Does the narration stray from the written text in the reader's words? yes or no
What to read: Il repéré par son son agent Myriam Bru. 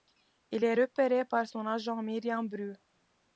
yes